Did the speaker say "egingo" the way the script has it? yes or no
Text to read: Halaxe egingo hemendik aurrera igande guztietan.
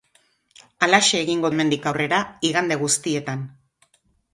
yes